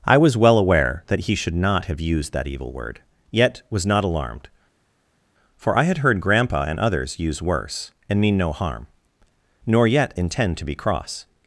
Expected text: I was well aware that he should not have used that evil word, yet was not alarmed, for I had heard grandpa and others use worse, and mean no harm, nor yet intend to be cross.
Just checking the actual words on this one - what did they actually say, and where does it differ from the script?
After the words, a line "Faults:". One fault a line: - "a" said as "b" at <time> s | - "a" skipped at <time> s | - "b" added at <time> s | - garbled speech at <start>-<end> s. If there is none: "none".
I was well aware that he should not have used that evil word, yet was not alarmed, for I had heard grandpa and others use worse, and mean no harm, nor yet intend to be cross.
Faults:
none